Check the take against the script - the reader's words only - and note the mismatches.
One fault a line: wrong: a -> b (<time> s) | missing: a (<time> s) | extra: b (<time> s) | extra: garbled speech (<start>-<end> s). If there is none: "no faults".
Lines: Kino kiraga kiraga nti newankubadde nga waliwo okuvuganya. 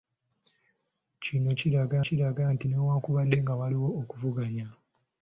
no faults